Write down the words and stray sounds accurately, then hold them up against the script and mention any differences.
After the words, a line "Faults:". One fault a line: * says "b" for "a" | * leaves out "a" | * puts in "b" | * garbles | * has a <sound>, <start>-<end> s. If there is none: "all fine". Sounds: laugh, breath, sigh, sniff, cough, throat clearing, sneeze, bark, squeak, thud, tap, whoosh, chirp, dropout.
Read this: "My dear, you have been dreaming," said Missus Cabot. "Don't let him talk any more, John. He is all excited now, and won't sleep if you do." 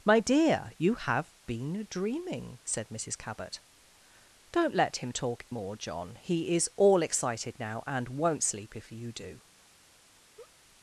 "My dear, you have been dreaming," said Missus Cabot. "Don't let him talk more, John. He is all excited now, and won't sleep if you do."
Faults:
* leaves out "any"
* has a laugh, 10.3-10.6 s